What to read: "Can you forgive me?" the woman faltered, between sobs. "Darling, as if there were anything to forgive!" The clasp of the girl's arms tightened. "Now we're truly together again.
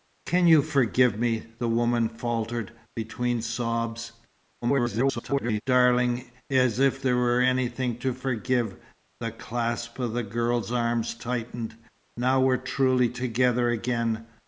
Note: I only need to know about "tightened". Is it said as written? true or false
true